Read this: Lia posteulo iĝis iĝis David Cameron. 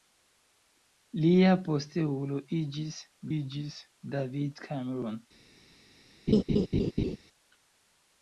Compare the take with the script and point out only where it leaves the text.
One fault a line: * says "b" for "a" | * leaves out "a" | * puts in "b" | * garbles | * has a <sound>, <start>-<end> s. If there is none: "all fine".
* has a laugh, 6.3-7.2 s